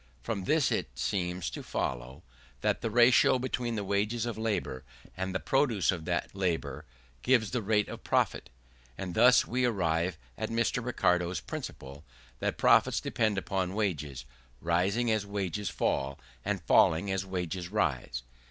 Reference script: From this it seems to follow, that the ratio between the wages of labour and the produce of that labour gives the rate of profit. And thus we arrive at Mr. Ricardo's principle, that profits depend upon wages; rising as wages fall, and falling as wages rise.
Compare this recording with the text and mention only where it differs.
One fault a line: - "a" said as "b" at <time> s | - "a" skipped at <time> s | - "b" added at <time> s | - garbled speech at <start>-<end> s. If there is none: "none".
none